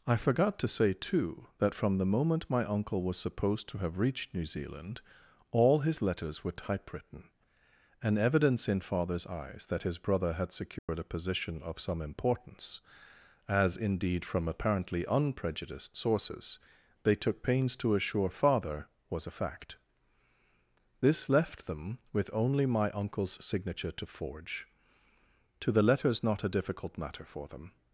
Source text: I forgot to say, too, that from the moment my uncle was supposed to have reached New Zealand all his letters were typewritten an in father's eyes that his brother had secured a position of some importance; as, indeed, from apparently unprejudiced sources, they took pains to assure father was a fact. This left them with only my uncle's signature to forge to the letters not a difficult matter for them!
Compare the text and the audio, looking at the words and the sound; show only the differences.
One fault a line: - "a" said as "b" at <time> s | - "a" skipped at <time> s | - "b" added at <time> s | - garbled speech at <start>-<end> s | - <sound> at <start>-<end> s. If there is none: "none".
- "evidence" added at 8.2 s
- dropout at 10.8-10.9 s